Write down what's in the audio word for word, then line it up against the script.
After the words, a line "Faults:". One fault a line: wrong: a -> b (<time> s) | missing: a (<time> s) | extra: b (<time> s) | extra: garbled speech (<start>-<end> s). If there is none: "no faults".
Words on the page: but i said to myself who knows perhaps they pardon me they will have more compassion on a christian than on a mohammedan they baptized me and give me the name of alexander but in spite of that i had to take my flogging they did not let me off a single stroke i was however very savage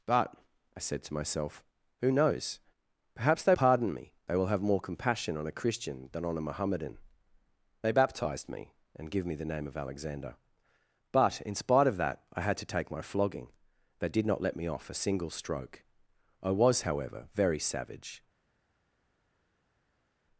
but i said to myself who knows perhaps they pardon me they will have more compassion on a christian than on a mohammedan they baptized me and give me the name of alexander but in spite of that i had to take my flogging they did not let me off a single stroke i was however very savage
Faults:
no faults